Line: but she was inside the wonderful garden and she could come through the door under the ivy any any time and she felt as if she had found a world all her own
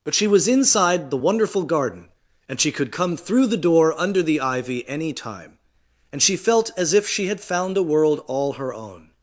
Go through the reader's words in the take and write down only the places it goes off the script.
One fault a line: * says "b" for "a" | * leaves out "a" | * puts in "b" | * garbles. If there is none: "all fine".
* leaves out "any"